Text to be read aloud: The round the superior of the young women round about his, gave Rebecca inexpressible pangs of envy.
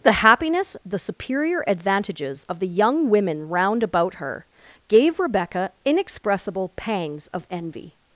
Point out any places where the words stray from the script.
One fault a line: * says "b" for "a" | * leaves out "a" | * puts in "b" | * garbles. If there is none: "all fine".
* says "happiness" for "round"
* puts in "advantages"
* says "her" for "his"